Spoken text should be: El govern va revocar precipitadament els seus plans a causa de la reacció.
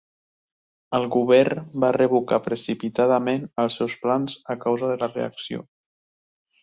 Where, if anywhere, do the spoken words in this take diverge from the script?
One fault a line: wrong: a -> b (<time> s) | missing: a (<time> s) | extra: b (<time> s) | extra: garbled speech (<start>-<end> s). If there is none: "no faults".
no faults